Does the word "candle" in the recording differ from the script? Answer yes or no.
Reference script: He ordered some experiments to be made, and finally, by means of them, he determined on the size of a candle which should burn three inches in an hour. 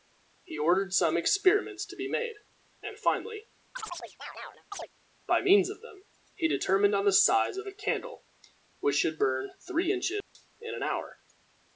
no